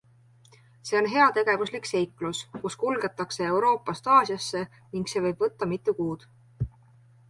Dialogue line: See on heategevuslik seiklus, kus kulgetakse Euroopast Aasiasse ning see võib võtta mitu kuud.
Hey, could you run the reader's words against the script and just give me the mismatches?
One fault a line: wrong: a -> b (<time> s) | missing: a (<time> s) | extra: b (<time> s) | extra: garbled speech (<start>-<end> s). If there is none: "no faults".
no faults